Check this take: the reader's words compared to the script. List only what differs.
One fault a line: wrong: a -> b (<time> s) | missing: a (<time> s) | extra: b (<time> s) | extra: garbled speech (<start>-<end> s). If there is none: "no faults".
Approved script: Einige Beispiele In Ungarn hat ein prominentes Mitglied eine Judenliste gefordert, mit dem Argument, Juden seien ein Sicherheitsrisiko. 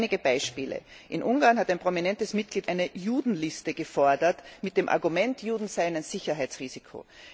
no faults